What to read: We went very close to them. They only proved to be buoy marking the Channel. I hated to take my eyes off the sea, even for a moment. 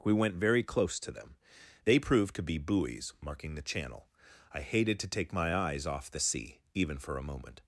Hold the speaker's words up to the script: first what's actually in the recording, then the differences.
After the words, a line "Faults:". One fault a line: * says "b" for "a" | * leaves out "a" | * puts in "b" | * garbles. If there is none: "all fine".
We went very close to them. They proved to be buoys marking the Channel. I hated to take my eyes off the sea, even for a moment.
Faults:
* leaves out "only"
* says "buoys" for "buoy"